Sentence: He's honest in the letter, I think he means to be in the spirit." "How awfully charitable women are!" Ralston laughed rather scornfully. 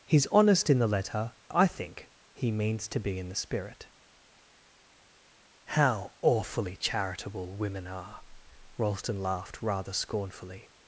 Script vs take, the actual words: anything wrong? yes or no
no